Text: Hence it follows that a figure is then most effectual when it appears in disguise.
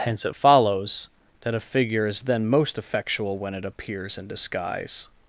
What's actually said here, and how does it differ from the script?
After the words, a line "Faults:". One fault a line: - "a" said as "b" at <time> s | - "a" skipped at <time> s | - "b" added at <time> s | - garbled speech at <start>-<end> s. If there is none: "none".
Hence it follows that a figure is then most effectual when it appears in disguise.
Faults:
none